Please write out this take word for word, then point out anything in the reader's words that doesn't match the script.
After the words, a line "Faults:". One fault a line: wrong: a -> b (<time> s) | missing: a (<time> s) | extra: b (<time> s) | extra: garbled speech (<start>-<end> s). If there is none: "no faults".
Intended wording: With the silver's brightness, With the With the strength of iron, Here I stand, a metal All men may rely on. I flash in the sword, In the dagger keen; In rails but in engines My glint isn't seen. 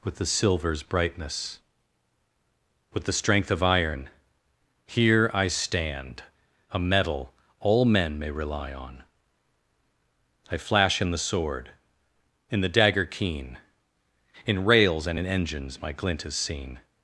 With the silver's brightness, With the strength of iron, Here I stand, a metal All men may rely on. I flash in the sword, In the dagger keen; In rails and in engines My glint is seen.
Faults:
missing: With the (3.1 s)
wrong: but -> and (15.1 s)
wrong: isn't -> is (16.3 s)